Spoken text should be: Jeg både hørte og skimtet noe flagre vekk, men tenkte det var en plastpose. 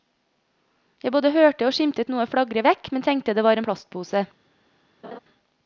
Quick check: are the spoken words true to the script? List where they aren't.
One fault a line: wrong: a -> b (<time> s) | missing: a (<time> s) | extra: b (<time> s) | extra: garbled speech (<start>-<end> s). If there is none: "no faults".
no faults